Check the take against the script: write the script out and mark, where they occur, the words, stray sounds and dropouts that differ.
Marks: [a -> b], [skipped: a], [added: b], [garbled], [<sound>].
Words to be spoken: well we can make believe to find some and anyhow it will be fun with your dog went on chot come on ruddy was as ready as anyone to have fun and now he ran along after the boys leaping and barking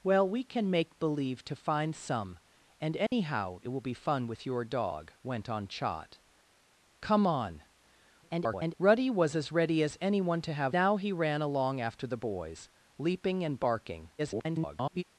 well we can make believe to find some and anyhow [dropout] it will be fun with your dog went on chot come on [garbled] ruddy was as ready as anyone to have [skipped: fun and] now he ran along after the boys leaping and barking [garbled]